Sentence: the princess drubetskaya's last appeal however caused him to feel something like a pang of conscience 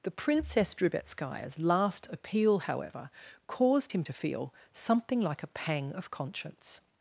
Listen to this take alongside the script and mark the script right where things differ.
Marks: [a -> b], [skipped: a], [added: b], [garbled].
the princess drubetskaya's last appeal however caused him to feel something like a pang of conscience